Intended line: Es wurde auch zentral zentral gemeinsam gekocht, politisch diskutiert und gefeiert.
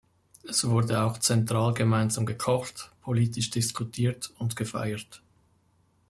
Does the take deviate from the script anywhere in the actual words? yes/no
yes